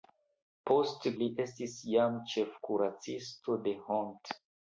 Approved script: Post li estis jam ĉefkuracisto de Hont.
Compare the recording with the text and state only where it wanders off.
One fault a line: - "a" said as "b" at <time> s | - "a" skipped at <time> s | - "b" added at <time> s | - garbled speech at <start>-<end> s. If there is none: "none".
none